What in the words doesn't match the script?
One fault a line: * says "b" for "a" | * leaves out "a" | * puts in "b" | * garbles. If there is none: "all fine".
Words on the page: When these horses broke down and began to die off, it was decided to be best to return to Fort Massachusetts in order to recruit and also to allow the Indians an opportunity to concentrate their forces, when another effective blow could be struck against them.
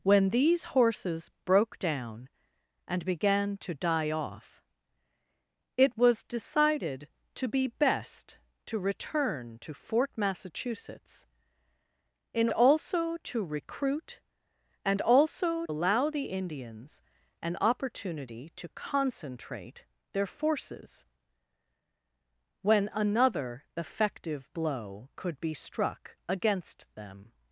* says "also" for "order"
* leaves out "to"